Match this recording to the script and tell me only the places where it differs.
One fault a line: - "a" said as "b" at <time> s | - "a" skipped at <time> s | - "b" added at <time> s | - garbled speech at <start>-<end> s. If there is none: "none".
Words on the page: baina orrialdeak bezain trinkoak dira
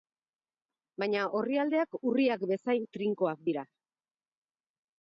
- "urriak" added at 2.1 s